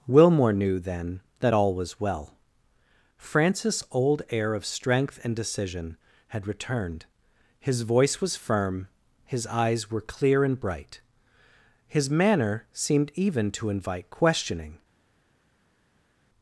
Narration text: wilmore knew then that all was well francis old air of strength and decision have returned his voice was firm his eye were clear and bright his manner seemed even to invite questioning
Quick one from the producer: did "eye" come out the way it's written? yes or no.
no